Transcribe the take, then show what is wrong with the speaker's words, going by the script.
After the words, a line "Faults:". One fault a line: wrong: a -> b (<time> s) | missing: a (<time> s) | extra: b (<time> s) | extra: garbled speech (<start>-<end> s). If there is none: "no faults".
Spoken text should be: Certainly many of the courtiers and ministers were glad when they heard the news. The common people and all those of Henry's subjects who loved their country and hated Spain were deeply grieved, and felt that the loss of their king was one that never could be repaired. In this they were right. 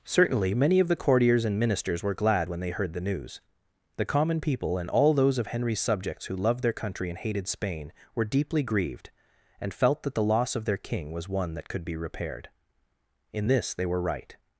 Certainly many of the courtiers and ministers were glad when they heard the news. The common people and all those of Henry's subjects who loved their country and hated Spain were deeply grieved, and felt that the loss of their king was one that could be repaired. In this they were right.
Faults:
missing: never (11.7 s)